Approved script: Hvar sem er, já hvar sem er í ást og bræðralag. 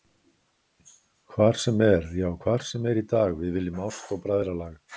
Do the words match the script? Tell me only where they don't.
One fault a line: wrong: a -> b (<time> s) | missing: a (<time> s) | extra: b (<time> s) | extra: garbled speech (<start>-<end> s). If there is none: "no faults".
extra: dag við viljum (3.2 s)